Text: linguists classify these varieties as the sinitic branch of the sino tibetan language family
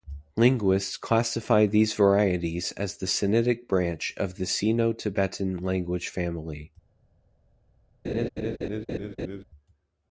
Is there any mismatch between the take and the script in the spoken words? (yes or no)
no